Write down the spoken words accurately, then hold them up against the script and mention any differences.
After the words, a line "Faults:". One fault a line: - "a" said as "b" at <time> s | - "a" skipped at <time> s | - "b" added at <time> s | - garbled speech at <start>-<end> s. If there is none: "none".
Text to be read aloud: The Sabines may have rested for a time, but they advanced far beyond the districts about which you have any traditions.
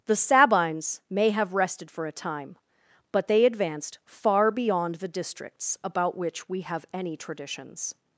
The Sabines may have rested for a time, but they advanced far beyond the districts about which we have any traditions.
Faults:
- "you" said as "we" at 6.5 s